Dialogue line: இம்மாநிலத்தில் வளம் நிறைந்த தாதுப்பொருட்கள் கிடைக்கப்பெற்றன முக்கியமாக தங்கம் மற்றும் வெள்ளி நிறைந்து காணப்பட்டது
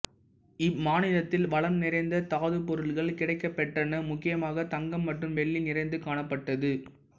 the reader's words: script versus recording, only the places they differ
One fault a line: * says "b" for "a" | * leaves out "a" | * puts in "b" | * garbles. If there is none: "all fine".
all fine